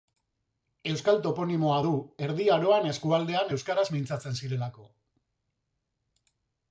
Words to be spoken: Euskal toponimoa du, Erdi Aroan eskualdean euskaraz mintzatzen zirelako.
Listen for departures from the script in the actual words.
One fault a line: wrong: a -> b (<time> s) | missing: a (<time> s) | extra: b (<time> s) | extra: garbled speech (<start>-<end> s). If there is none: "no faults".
no faults